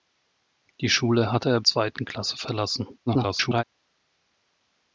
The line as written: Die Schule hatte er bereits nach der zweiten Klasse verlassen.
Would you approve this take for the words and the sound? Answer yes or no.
no